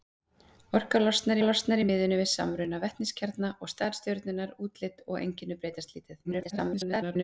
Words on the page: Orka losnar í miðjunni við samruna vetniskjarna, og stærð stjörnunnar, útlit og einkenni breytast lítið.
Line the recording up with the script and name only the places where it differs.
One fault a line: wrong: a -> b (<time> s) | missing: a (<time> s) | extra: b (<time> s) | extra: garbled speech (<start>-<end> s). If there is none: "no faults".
extra: losnar (1.4 s)
extra: garbled speech (6.2-7.2 s)